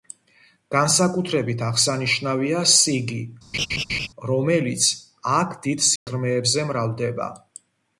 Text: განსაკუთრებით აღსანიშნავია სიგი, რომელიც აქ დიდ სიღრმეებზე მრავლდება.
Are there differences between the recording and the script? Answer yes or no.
no